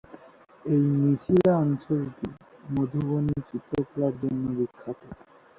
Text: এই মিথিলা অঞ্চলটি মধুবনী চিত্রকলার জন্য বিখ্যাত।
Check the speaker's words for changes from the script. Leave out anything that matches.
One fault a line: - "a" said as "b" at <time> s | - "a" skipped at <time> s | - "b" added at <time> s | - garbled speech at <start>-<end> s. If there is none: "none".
none